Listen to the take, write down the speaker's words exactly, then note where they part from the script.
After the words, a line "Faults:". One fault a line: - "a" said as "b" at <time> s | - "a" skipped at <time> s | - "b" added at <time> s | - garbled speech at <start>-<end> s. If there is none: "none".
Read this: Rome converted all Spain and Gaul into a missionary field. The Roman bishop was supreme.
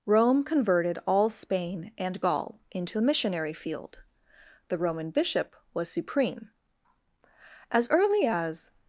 Rome converted all Spain and Gaul into a missionary field. The Roman bishop was supreme. As early as
Faults:
- "As early as" added at 7.7 s